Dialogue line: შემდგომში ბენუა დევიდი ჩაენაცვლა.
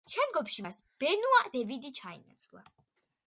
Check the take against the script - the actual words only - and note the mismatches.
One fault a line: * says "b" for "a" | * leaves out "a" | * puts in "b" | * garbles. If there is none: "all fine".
* puts in "მას"